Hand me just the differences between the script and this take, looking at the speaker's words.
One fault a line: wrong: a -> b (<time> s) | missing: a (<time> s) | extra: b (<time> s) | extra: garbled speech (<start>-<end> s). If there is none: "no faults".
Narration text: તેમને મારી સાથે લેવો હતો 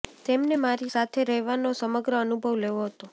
extra: રહેવાનો સમગ્ર અનુભવ (1.3 s)